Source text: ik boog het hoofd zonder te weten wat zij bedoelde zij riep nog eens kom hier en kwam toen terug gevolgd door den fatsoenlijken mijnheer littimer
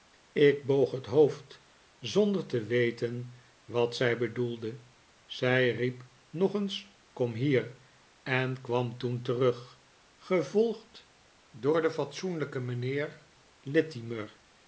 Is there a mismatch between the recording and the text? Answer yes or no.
no